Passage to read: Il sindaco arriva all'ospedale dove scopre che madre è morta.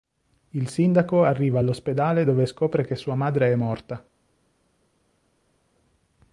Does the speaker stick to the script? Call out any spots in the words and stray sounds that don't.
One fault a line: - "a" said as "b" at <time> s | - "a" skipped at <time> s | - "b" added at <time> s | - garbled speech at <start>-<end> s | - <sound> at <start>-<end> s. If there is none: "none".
- "sua" added at 2.9 s